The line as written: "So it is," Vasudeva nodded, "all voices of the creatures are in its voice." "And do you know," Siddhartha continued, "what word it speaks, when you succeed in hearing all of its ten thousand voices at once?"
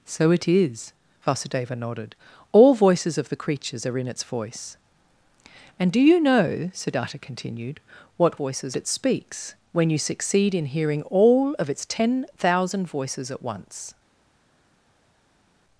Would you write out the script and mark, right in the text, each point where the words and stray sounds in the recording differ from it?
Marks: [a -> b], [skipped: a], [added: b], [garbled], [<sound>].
"So it is," Vasudeva nodded, "all voices of the creatures are in its voice." "And do you know," Siddhartha continued, "what [word -> voices] it speaks, when you succeed in hearing all of its ten thousand voices at once?"